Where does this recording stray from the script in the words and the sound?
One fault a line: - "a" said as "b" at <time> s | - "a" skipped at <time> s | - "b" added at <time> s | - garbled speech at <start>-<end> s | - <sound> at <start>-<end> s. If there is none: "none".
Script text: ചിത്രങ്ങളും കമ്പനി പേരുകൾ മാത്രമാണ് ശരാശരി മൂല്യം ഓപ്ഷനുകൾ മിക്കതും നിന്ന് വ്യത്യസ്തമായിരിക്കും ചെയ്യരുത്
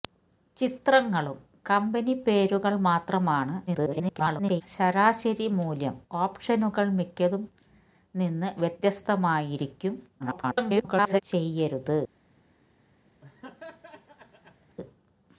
- garbled speech at 3.7-4.6 s
- garbled speech at 10.2-11.2 s
- laugh at 13.2-14.8 s